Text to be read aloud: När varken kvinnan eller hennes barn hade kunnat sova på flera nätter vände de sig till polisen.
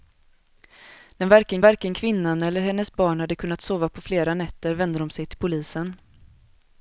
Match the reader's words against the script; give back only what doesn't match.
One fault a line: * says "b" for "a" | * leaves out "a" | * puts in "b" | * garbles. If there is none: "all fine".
* puts in "varken"